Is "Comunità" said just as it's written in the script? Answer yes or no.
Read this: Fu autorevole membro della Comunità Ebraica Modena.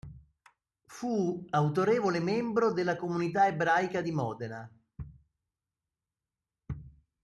yes